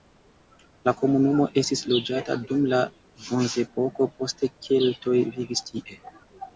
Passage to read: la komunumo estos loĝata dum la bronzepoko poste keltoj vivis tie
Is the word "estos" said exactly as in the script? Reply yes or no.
no